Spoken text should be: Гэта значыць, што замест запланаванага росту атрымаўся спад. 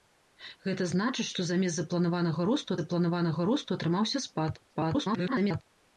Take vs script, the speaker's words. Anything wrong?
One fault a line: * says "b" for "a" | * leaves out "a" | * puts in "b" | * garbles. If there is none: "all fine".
* puts in "запланаванага росту"
* garbles